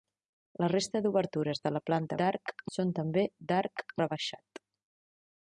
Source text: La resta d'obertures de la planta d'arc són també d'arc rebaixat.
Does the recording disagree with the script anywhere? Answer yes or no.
no